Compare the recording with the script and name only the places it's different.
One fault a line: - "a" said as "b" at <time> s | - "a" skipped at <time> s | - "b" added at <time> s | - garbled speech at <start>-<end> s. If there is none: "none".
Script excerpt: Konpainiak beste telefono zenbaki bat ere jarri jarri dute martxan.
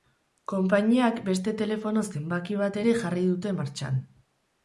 - "jarri" skipped at 3.2 s